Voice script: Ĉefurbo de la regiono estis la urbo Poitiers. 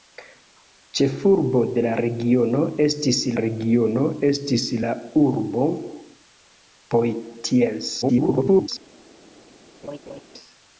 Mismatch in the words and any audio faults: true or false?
true